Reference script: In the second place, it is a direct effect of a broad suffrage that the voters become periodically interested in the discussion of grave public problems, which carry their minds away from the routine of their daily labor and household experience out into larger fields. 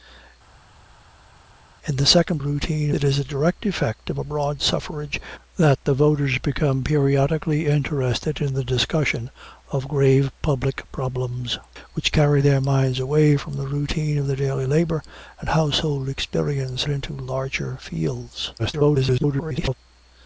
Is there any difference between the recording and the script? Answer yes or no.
yes